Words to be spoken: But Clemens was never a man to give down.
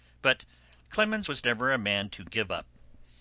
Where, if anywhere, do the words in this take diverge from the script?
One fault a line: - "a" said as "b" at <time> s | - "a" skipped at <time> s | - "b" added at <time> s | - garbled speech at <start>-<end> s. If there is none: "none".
- "down" said as "up" at 2.5 s